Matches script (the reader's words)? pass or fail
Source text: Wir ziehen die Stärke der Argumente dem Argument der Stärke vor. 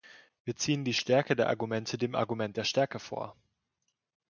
pass